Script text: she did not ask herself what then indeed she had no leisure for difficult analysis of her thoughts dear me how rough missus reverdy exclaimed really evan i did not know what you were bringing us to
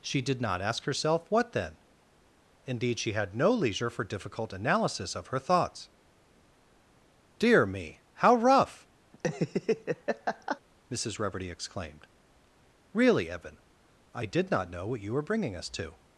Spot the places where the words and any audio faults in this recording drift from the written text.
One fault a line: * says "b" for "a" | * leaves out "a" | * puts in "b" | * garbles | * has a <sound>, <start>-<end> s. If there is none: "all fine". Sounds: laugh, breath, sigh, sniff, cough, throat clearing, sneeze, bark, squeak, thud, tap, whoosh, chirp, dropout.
* has a laugh, 9.1-10.6 s